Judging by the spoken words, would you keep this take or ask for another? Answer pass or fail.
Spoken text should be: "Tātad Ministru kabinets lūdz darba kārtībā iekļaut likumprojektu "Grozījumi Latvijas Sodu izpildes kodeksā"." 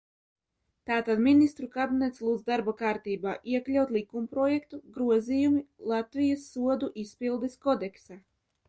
pass